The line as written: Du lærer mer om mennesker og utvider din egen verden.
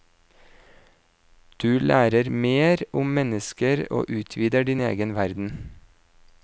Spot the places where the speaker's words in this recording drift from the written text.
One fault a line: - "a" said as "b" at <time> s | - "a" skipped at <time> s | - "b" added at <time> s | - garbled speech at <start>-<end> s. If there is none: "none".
none